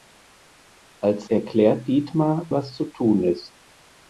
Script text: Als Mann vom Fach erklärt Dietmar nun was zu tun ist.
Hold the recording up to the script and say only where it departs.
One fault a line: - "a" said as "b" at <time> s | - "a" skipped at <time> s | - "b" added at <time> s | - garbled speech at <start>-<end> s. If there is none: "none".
- "Mann vom Fach" skipped at 1.3 s
- "nun" skipped at 2.5 s